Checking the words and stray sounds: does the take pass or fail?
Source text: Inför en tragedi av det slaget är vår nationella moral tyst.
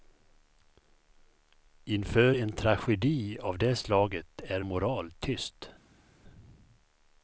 fail